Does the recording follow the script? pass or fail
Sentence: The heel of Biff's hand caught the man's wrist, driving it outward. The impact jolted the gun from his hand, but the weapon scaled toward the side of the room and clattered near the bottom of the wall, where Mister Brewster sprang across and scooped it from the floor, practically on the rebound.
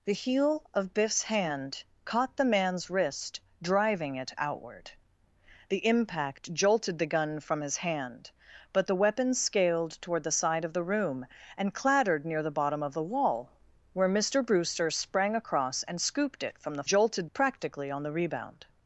fail